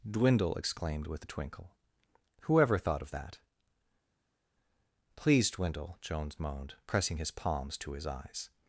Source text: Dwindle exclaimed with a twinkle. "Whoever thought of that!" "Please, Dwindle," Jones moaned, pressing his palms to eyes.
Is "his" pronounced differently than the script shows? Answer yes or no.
no